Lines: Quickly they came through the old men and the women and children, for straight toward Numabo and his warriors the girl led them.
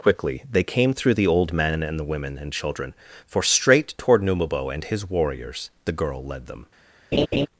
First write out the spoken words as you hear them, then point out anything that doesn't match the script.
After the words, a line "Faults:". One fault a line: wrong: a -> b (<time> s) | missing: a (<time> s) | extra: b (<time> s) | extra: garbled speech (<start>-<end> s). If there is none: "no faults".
Quickly they came through the old men and the women and children, for straight toward Numabo and his warriors the girl led them.
Faults:
no faults